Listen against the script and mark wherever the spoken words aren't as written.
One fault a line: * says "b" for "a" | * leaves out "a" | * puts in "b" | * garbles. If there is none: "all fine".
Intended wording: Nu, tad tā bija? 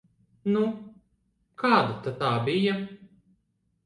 * puts in "kāda"